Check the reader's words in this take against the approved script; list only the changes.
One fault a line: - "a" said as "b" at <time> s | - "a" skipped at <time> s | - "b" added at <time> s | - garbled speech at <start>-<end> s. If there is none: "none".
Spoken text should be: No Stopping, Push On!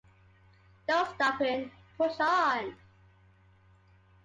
none